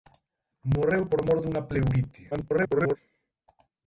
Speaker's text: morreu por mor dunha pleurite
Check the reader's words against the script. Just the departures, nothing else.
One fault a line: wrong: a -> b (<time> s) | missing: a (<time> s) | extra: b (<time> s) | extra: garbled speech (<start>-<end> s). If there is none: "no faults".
extra: garbled speech (2.3-3.0 s)